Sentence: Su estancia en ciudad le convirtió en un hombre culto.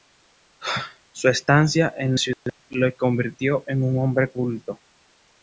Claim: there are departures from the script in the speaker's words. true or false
false